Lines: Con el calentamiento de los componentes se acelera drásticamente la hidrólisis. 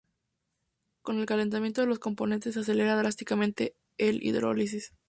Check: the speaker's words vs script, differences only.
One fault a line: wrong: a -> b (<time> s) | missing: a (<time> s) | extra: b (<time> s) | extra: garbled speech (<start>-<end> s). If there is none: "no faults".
no faults